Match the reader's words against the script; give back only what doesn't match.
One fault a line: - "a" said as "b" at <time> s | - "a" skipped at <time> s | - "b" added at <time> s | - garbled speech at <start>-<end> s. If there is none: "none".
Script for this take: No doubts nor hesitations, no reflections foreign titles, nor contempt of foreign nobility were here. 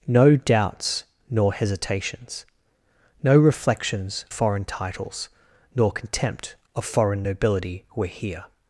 none